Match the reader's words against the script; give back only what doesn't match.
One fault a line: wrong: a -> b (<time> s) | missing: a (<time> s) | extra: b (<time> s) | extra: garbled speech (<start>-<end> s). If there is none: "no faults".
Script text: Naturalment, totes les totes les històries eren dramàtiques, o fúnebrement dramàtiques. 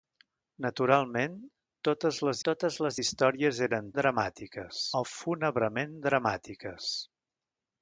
no faults